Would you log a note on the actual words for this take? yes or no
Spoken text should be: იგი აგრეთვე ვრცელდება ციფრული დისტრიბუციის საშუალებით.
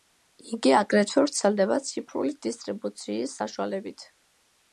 no